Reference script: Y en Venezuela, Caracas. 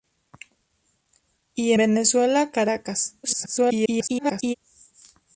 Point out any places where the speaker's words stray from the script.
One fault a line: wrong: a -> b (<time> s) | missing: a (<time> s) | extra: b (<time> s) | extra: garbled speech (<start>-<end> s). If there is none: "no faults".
missing: en (1.7 s)
extra: garbled speech (3.2-4.5 s)